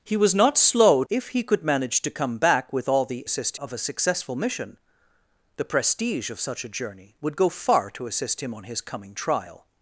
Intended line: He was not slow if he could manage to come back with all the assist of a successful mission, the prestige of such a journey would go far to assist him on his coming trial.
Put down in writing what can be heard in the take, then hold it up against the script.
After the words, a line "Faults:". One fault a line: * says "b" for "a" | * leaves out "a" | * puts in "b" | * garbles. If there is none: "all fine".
He was not slow if he could manage to come back with all the assist of a successful mission, the prestige of such a journey would go far to assist him on his coming trial.
Faults:
all fine